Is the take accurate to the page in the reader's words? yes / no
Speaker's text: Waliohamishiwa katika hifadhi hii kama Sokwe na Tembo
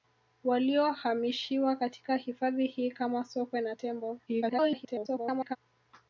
no